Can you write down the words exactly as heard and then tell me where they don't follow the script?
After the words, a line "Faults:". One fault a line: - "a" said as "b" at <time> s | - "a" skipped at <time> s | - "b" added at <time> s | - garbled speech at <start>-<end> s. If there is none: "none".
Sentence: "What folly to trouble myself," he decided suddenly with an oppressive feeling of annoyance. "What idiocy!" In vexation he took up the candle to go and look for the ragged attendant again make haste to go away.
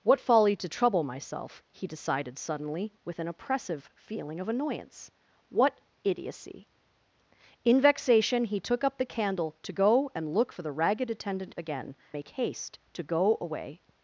"What folly to trouble myself," he decided suddenly with an oppressive feeling of annoyance. "What idiocy!" In vexation he took up the candle to go and look for the ragged attendant again make haste to go away.
Faults:
none